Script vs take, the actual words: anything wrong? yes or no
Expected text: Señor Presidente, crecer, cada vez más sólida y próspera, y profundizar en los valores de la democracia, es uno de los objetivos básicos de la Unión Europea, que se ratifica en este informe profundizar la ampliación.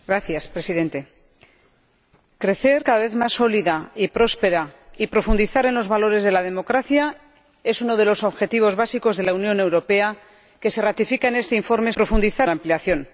no